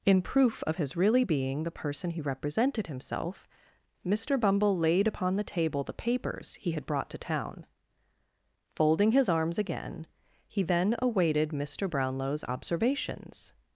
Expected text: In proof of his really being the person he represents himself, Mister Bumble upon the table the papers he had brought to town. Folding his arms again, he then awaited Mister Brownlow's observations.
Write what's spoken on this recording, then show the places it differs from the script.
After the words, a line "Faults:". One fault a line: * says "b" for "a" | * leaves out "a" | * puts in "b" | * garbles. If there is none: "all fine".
In proof of his really being the person he represented himself, Mister Bumble laid upon the table the papers he had brought to town. Folding his arms again, he then awaited Mister Brownlow's observations.
Faults:
* says "represented" for "represents"
* puts in "laid"